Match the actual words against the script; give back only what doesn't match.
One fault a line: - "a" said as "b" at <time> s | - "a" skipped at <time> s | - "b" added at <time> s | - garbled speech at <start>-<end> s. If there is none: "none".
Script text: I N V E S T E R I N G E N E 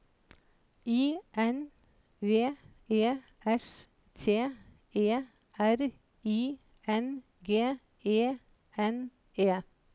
none